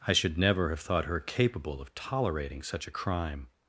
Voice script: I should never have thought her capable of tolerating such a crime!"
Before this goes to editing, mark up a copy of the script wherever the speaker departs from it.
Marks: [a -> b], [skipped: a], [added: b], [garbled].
I should never have thought her capable of tolerating such a crime!"